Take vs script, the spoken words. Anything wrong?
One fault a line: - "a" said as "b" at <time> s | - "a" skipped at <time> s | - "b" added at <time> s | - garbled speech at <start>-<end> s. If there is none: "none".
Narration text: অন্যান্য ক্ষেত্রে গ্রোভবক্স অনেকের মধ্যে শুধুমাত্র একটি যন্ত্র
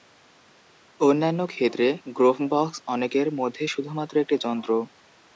none